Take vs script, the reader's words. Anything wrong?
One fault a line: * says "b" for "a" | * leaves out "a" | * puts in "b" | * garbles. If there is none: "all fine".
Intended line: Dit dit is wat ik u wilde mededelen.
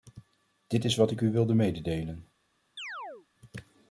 * leaves out "dit"